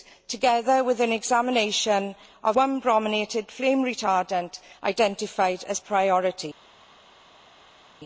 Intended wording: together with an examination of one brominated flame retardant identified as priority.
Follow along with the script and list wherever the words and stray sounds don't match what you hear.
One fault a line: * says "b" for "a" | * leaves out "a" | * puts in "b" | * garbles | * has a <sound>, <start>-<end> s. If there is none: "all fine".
all fine